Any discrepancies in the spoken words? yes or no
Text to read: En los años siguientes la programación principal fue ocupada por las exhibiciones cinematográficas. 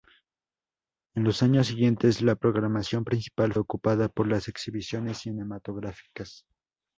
yes